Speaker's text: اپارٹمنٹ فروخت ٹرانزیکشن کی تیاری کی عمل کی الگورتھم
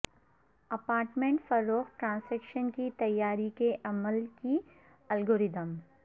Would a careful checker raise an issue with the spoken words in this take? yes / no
yes